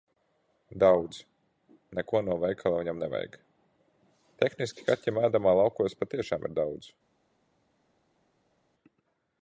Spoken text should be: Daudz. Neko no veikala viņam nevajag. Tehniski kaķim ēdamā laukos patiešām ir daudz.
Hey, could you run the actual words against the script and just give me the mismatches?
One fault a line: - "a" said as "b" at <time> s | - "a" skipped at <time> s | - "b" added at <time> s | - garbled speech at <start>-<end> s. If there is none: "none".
none